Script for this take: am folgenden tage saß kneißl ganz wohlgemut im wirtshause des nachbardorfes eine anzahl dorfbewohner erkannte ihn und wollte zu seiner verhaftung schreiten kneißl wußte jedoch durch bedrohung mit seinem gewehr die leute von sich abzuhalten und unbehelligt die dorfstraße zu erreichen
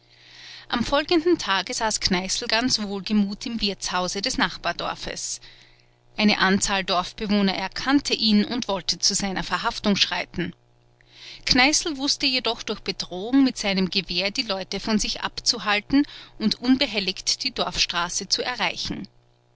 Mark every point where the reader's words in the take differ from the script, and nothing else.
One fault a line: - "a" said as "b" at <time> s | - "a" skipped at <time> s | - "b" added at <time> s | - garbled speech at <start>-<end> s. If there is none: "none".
none